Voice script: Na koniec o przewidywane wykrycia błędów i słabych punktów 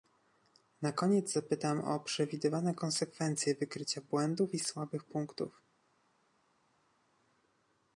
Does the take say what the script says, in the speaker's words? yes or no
no